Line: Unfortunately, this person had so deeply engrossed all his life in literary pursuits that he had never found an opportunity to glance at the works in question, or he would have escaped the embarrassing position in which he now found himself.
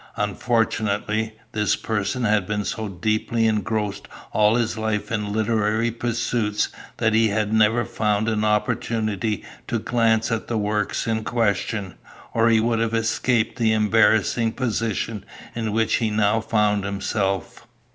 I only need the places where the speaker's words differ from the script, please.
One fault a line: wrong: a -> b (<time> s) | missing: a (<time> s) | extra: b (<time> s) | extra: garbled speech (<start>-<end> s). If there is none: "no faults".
extra: been (2.5 s)